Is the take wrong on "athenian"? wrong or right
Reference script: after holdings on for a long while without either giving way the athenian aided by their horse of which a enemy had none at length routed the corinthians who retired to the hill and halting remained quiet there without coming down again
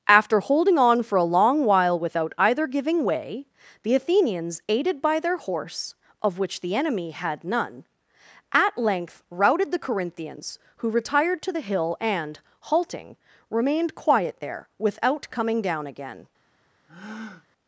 wrong